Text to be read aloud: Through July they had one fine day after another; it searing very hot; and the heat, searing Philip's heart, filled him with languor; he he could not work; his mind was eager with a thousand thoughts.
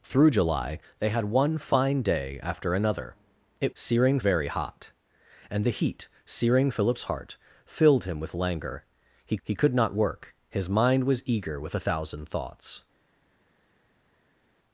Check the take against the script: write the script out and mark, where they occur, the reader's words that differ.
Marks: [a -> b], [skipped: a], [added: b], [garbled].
Through July they had one fine day after another; it searing very hot; and the heat, searing Philip's heart, filled him with languor; he he could not work; his mind was eager with a thousand thoughts.